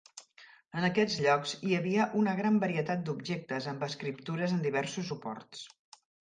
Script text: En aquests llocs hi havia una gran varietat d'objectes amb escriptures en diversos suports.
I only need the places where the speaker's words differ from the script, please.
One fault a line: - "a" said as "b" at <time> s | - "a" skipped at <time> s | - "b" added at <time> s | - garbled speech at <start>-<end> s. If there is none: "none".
none